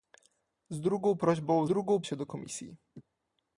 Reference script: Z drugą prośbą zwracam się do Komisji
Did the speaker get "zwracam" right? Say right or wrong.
wrong